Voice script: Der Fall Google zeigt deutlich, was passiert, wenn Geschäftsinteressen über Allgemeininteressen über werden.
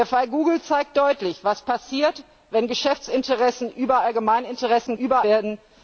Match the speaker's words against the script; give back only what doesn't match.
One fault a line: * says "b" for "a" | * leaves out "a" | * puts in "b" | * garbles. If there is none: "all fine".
all fine